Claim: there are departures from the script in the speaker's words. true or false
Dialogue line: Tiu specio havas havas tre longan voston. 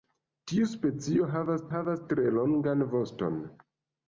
false